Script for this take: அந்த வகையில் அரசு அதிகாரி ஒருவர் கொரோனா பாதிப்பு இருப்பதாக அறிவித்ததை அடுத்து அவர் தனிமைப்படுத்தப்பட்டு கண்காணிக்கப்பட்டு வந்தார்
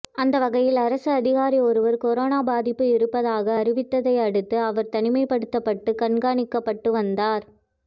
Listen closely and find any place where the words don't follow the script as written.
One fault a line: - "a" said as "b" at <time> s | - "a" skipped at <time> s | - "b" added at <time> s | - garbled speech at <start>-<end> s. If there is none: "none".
none